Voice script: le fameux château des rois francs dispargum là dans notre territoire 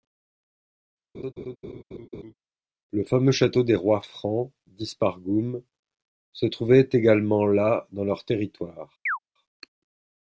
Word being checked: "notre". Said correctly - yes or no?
no